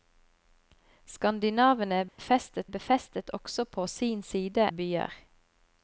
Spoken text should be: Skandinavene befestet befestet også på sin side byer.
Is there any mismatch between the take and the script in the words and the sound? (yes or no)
yes